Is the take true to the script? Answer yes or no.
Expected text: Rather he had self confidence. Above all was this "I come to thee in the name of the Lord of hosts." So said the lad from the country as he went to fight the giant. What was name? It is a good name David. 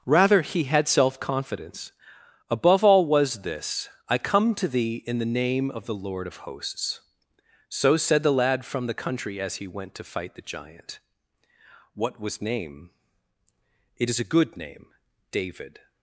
yes